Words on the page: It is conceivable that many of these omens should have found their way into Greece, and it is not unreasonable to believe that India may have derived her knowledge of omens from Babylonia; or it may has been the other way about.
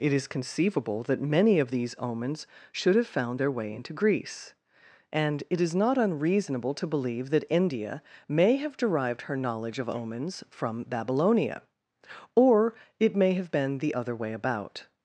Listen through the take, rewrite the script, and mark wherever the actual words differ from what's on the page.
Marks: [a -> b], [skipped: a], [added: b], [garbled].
It is conceivable that many of these omens should have found their way into Greece, and it is not unreasonable to believe that India may have derived her knowledge of omens from Babylonia; or it may [has -> have] been the other way about.